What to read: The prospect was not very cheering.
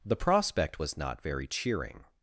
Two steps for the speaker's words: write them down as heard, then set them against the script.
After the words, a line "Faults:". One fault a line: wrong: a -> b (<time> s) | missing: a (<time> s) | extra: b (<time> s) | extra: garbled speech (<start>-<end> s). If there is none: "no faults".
The prospect was not very cheering.
Faults:
no faults